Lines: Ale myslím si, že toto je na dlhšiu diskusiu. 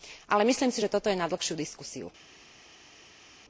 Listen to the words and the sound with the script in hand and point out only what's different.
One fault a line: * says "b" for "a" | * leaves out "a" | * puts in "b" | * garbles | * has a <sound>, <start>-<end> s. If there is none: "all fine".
all fine